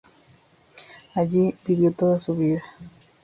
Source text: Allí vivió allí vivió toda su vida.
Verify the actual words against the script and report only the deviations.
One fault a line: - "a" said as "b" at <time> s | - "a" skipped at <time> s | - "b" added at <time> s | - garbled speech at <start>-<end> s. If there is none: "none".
- "allí vivió" skipped at 1.9 s